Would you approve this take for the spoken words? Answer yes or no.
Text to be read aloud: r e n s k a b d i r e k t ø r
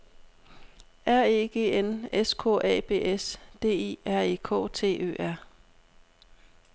no